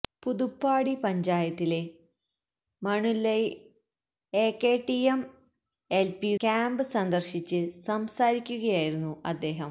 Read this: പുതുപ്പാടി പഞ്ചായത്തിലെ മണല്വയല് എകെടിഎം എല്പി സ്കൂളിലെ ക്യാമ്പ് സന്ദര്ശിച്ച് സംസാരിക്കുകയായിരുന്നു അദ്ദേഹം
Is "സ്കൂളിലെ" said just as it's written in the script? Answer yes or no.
no